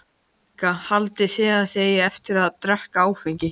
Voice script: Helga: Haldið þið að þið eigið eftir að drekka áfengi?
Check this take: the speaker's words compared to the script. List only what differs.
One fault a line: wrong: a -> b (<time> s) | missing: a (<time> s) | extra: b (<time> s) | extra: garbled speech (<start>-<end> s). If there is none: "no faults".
no faults